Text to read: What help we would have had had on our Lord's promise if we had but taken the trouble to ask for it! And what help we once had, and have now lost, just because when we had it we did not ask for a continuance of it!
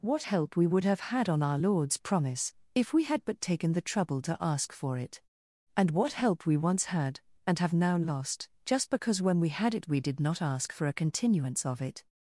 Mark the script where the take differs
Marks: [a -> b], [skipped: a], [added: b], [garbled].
What help we would have had [skipped: had] on our Lord's promise if we had but taken the trouble to ask for it! And what help we once had, and have now lost, just because when we had it we did not ask for a continuance of it!